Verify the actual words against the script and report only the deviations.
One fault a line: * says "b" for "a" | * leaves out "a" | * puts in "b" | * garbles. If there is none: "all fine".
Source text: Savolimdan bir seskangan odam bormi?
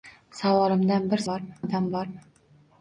* says "bormi" for "seskangan"